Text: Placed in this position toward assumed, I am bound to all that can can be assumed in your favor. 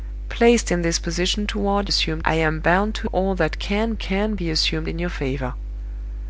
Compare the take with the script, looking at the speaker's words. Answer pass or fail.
pass